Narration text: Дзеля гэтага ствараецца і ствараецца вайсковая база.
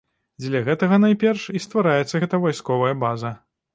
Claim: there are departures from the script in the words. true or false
true